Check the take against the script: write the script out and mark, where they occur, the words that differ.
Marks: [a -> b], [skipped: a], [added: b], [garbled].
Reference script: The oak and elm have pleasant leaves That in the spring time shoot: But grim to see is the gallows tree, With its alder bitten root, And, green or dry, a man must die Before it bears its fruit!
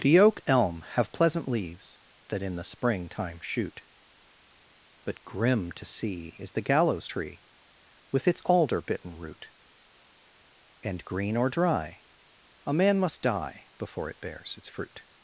The oak [skipped: and] elm have pleasant leaves That in the spring time shoot: But grim to see is the gallows tree, With its alder bitten root, And, green or dry, a man must die Before it bears its fruit!